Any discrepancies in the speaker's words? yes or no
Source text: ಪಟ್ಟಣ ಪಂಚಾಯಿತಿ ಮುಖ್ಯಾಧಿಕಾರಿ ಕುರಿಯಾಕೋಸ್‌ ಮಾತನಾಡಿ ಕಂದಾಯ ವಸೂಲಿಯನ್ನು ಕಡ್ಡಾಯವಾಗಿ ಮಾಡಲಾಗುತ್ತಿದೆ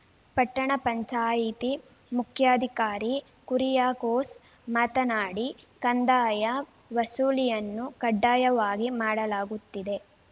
no